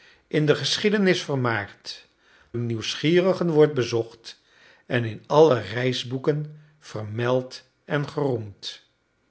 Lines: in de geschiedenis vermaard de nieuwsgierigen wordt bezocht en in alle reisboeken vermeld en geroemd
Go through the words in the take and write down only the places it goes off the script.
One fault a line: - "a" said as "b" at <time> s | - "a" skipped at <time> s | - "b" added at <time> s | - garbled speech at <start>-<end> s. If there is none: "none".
none